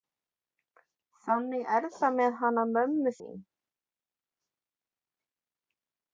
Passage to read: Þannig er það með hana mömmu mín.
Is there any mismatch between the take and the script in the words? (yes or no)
no